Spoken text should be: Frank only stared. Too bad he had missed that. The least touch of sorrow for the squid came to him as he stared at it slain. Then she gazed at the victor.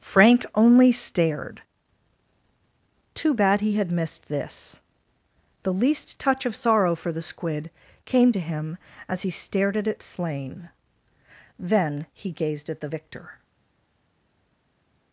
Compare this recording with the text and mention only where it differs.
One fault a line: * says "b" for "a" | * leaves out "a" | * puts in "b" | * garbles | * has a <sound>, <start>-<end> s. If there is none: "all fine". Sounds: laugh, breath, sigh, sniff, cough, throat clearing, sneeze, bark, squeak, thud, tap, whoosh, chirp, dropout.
* says "this" for "that"
* says "he" for "she"